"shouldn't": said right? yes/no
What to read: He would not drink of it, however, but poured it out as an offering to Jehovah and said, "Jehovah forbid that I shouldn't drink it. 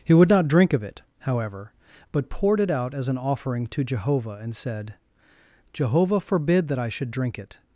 no